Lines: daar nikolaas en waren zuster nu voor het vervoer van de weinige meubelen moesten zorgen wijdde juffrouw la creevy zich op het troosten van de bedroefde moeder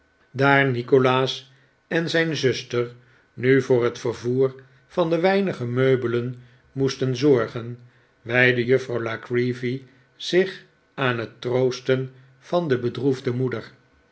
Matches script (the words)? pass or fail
fail